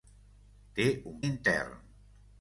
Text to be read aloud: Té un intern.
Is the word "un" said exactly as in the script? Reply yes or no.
yes